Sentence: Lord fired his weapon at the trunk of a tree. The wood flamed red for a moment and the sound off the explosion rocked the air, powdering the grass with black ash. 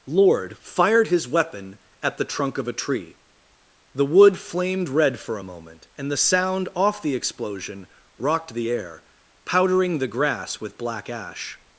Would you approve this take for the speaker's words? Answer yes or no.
yes